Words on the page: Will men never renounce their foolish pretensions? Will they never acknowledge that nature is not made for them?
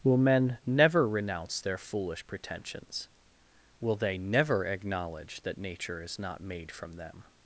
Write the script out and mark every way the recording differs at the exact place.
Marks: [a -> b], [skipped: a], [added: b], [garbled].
Will men never renounce their foolish pretensions? Will they never acknowledge that nature is not made [for -> from] them?